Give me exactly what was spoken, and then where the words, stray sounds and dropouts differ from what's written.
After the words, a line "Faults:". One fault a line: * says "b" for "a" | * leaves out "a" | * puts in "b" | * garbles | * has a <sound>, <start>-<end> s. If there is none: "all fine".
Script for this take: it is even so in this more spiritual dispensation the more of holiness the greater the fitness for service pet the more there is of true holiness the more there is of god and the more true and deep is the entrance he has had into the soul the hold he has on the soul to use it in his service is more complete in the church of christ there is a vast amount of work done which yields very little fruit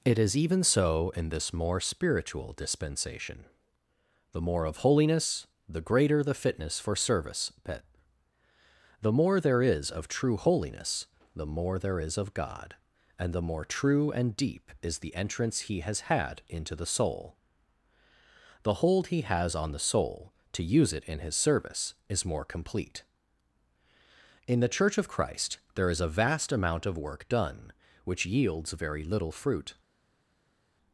it is even so in this more spiritual dispensation the more of holiness the greater the fitness for service pet the more there is of true holiness the more there is of god and the more true and deep is the entrance he has had into the soul the hold he has on the soul to use it in his service is more complete in the church of christ there is a vast amount of work done which yields very little fruit
Faults:
all fine